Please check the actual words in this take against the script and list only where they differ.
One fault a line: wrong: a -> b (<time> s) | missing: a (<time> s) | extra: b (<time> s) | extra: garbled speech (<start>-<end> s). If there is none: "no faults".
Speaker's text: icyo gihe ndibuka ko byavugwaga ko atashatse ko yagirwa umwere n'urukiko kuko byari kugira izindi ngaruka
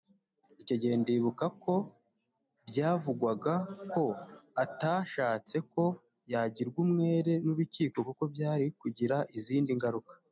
no faults